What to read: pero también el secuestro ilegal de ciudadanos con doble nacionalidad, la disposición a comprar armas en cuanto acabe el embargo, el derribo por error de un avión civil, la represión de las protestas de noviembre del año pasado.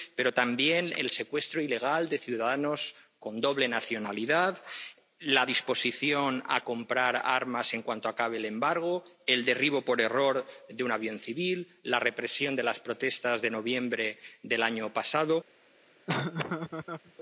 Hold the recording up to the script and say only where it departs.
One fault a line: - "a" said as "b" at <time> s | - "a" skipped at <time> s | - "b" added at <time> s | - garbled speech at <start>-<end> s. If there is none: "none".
none